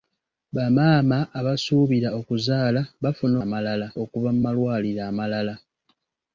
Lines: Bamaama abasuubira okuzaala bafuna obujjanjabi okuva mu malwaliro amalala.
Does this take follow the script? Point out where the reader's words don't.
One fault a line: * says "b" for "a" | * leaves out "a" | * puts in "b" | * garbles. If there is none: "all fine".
* says "amalala" for "obujjanjabi"